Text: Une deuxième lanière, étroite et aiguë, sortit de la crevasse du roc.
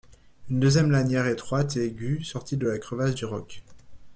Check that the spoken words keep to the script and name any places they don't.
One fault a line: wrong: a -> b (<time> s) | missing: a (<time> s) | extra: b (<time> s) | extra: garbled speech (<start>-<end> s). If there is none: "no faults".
no faults